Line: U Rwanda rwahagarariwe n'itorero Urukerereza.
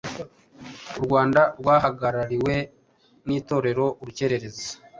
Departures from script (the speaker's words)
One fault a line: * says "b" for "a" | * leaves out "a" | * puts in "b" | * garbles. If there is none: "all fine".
all fine